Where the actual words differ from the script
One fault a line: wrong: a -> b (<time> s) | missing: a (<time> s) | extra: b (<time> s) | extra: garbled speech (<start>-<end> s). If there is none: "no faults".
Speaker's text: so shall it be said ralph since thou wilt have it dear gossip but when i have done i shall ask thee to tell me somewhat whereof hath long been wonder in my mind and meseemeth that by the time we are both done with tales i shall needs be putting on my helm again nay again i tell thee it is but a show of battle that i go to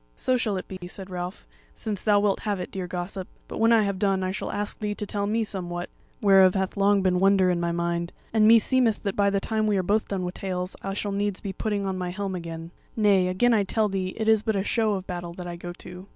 no faults